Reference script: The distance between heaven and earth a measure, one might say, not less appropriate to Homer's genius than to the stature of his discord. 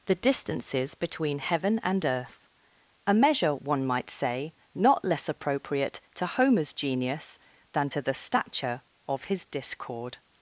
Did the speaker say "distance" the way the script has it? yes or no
no